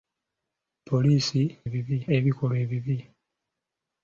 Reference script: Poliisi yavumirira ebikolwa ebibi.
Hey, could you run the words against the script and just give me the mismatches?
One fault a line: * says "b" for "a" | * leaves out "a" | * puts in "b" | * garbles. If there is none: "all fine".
* says "ebibi" for "yavumirira"